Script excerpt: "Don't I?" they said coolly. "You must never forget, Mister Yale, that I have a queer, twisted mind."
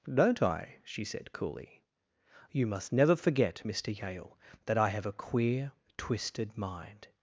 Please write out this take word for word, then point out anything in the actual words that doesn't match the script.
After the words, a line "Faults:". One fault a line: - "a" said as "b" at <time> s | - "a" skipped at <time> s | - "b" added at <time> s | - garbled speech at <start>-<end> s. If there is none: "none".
"Don't I?" she said coolly. "You must never forget, Mister Yale, that I have a queer, twisted mind."
Faults:
- "they" said as "she" at 0.8 s